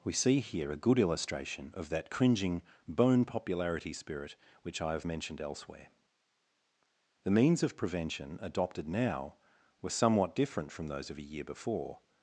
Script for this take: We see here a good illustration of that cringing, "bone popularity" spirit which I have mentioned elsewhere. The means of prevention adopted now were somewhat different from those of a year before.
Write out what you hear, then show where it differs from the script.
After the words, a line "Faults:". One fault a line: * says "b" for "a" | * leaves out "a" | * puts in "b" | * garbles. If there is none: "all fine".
We see here a good illustration of that cringing, "bone popularity" spirit which I have mentioned elsewhere. The means of prevention adopted now were somewhat different from those of a year before.
Faults:
all fine